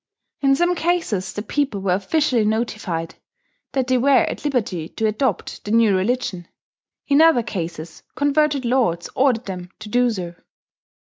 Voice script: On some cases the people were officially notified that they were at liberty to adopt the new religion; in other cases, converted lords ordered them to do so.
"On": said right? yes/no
no